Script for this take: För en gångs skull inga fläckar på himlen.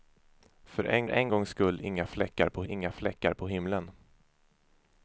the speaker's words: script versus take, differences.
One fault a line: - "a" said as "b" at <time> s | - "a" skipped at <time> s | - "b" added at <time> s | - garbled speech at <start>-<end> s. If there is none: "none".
- "en" added at 1.1 s
- "inga fläckar på" added at 2.7 s